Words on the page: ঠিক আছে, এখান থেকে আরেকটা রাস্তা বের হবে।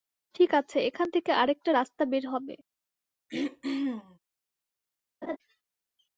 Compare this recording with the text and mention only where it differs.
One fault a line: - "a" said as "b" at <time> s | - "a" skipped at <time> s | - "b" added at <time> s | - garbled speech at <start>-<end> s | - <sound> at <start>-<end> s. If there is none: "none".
- throat clearing at 3.3-4.2 s
- laugh at 5.2-5.4 s